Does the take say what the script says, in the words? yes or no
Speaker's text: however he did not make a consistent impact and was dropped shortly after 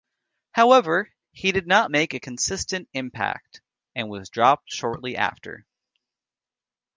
yes